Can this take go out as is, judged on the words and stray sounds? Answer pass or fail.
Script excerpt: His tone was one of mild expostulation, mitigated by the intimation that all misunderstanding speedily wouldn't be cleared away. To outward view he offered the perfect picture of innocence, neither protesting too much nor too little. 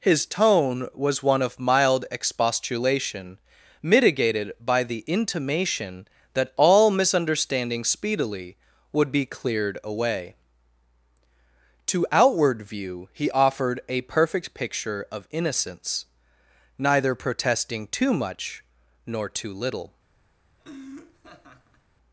fail